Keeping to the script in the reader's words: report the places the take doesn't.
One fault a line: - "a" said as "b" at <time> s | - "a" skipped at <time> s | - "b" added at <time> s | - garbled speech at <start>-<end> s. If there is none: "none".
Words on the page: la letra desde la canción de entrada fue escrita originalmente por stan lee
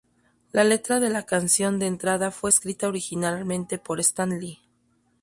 - "desde" said as "de" at 1.0 s